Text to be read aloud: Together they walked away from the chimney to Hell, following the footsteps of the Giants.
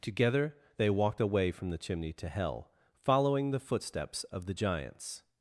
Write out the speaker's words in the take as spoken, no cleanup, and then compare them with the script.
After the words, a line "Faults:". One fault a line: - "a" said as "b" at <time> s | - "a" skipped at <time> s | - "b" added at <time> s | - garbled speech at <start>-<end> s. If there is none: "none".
Together they walked away from the chimney to Hell, following the footsteps of the Giants.
Faults:
none